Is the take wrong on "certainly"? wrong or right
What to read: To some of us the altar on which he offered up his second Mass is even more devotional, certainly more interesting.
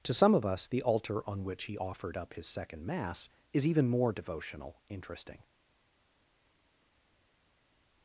wrong